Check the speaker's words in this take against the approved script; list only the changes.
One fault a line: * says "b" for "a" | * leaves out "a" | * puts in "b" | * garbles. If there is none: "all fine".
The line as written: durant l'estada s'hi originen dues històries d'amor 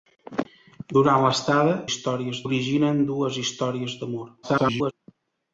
* says "històries" for "s'hi"
* garbles